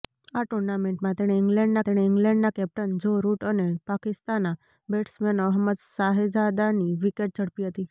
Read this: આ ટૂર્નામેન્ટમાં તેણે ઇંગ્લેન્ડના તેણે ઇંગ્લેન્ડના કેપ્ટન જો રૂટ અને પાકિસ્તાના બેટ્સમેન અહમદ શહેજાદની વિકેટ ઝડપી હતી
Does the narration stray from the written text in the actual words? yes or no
no